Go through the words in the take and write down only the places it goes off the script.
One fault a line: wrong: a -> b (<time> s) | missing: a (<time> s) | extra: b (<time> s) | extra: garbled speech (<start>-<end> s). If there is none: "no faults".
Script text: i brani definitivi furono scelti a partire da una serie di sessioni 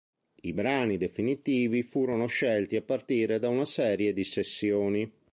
no faults